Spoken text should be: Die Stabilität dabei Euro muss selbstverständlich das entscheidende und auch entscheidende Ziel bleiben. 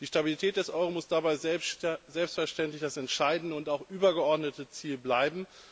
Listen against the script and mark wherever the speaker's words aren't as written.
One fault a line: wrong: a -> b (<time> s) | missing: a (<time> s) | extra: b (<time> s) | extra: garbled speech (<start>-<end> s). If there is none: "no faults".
wrong: dabei -> des (0.6 s)
extra: dabei (1.1 s)
wrong: entscheidende -> übergeordnete (3.9 s)